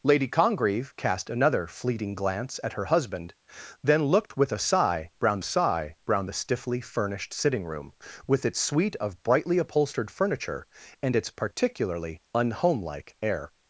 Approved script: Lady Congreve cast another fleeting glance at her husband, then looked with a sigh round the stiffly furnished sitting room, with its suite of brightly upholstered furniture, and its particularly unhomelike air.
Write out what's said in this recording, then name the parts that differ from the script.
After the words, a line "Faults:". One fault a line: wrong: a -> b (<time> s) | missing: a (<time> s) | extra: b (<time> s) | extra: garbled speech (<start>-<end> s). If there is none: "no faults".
Lady Congreve cast another fleeting glance at her husband, then looked with a sigh round sigh round the stiffly furnished sitting room, with its suite of brightly upholstered furniture, and its particularly unhomelike air.
Faults:
extra: sigh round (5.4 s)